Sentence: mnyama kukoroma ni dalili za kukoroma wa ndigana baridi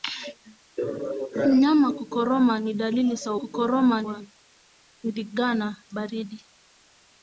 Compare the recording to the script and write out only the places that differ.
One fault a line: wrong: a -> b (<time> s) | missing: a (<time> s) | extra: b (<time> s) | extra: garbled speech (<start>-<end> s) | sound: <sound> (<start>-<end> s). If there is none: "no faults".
no faults